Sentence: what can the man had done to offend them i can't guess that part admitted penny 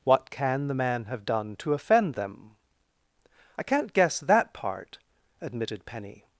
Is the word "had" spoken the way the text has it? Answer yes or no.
no